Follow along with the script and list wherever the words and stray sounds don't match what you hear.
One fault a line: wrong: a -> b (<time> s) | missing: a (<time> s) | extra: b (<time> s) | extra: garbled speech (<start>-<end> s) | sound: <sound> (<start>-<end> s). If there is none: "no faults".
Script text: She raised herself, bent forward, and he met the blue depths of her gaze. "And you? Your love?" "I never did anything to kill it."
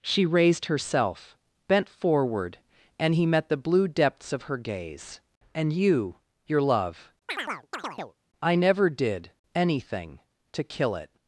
sound: chirp (7.3-8.2 s)